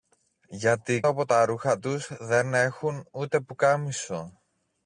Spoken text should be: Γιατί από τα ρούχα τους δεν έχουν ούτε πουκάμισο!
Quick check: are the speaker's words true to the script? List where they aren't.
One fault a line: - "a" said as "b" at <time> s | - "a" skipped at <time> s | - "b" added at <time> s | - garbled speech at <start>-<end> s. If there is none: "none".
none